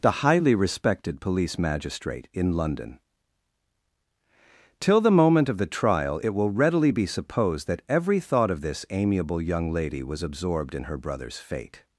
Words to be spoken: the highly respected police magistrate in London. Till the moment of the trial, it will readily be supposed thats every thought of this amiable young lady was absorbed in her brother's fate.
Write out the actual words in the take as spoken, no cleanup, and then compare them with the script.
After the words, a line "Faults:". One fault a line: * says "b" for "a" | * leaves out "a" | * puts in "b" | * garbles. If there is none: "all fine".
the highly respected police magistrate in London. Till the moment of the trial, it will readily be supposed that every thought of this amiable young lady was absorbed in her brother's fate.
Faults:
* says "that" for "thats"